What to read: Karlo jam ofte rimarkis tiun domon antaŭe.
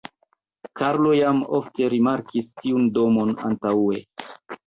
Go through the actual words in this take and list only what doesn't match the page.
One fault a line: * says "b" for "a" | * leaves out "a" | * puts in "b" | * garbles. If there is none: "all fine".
all fine